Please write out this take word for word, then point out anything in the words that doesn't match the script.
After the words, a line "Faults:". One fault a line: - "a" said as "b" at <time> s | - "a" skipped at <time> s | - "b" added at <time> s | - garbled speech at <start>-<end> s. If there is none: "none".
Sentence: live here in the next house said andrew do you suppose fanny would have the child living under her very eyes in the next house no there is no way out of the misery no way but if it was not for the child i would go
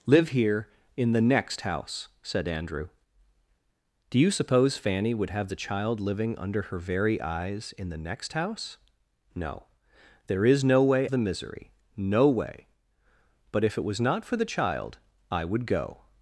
live here in the next house said andrew do you suppose fanny would have the child living under her very eyes in the next house no there is no way the misery no way but if it was not for the child i would go
Faults:
- "out of" skipped at 11.1 s